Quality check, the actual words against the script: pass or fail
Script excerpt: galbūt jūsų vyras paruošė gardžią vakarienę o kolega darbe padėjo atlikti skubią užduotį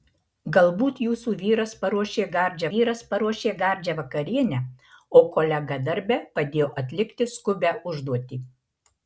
fail